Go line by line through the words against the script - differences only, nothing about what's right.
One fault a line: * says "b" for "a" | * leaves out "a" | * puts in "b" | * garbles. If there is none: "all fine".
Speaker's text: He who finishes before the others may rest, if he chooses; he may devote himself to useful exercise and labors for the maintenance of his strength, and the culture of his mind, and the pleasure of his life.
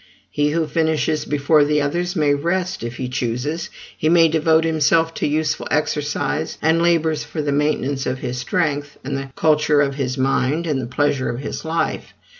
all fine